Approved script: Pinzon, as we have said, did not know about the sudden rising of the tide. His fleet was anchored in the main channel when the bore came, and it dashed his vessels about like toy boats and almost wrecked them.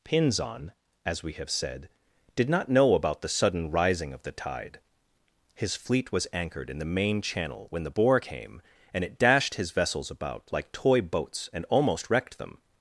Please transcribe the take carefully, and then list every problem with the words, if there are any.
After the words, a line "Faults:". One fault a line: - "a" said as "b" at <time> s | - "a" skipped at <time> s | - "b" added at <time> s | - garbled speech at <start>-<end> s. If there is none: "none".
Pinzon, as we have said, did not know about the sudden rising of the tide. His fleet was anchored in the main channel when the bore came, and it dashed his vessels about like toy boats and almost wrecked them.
Faults:
none